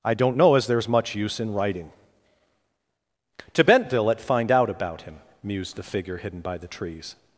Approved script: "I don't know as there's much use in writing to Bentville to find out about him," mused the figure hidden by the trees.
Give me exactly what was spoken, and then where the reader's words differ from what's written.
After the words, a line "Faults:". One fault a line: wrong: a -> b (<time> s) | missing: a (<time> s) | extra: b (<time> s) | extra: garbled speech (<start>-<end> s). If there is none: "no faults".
"I don't know as there's much use in writing to Bentville at find out about him," mused the figure hidden by the trees.
Faults:
wrong: to -> at (4.1 s)